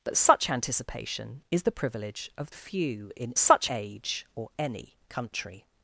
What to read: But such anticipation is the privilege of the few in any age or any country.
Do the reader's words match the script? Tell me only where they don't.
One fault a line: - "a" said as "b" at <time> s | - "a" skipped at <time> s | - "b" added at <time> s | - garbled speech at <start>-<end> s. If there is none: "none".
- "the" skipped at 2.5 s
- "any" said as "such" at 3.4 s